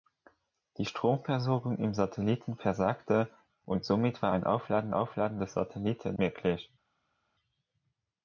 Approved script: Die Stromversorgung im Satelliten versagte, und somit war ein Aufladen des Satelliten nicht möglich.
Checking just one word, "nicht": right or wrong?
wrong